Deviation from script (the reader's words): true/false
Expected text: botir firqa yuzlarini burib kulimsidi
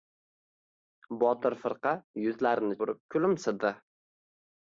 false